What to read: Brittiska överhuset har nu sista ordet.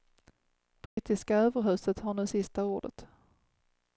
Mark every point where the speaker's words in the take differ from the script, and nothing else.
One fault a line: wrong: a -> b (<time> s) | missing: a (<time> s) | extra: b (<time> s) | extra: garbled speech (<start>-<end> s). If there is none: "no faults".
no faults